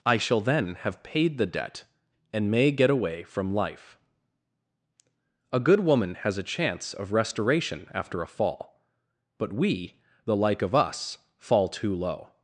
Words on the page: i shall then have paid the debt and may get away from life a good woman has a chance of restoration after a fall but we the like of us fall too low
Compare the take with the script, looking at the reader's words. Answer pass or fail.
pass